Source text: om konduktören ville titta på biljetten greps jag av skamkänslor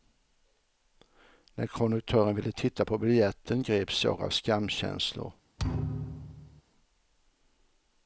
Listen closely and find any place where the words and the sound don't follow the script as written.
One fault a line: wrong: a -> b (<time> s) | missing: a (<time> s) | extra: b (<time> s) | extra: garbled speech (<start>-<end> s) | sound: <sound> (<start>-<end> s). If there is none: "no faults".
wrong: om -> när (1.6 s)
sound: thud (5.6-6.6 s)